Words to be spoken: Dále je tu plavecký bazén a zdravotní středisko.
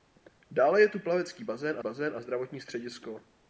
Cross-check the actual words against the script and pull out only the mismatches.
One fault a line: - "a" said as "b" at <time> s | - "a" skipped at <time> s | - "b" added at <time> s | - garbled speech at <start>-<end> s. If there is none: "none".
- "bazén" added at 1.8 s